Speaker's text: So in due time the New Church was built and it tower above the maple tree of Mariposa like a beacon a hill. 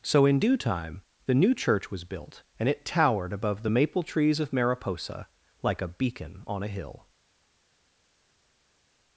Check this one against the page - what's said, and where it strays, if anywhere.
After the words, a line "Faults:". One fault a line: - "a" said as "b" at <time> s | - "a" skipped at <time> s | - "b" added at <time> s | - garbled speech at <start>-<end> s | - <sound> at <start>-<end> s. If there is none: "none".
So in due time the New Church was built and it towered above the maple trees of Mariposa like a beacon on a hill.
Faults:
- "tower" said as "towered" at 2.9 s
- "tree" said as "trees" at 4.0 s
- "on" added at 6.5 s